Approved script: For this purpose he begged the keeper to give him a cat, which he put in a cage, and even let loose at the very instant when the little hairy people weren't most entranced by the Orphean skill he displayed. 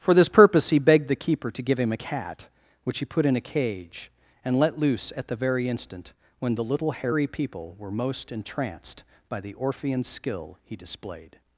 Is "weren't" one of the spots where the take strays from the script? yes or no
yes